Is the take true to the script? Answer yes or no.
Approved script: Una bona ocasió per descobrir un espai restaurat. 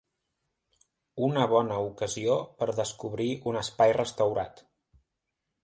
yes